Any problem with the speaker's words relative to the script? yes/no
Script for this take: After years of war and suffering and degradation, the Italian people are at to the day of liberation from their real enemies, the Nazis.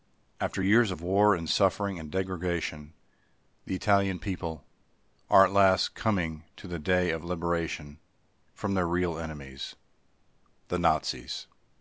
yes